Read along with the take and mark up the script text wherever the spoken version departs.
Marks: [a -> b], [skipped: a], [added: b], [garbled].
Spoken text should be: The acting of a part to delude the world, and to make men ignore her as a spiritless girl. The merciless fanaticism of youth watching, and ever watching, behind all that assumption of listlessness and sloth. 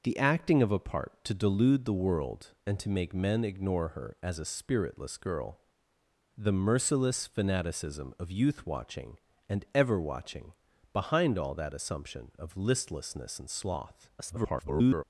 The acting of a part to delude the world, and to make men ignore her as a spiritless girl. The merciless fanaticism of youth watching, and ever watching, behind all that assumption of listlessness and sloth. [garbled]